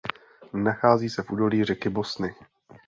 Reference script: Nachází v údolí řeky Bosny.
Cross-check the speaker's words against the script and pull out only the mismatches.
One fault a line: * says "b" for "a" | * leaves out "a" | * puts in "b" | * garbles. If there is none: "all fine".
* puts in "se"